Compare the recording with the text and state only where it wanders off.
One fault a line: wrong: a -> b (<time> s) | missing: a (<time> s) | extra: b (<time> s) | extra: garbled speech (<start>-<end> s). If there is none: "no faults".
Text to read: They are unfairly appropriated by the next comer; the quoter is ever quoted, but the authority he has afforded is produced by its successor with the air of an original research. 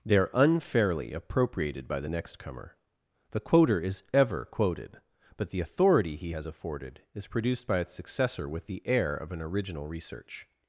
no faults